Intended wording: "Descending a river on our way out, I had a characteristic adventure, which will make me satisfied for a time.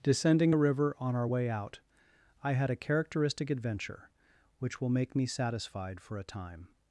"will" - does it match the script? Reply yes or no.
yes